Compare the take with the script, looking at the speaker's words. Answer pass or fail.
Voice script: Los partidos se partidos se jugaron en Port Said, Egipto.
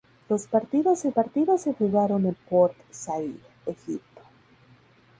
pass